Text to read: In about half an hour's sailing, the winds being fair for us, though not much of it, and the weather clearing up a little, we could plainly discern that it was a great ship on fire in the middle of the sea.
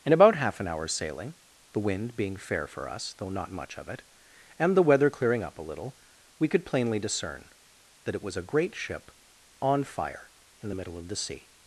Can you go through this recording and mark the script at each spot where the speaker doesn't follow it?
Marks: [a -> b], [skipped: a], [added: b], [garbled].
In about half an hour's sailing, the [winds -> wind] being fair for us, though not much of it, and the weather clearing up a little, we could plainly discern that it was a great ship on fire in the middle of the sea.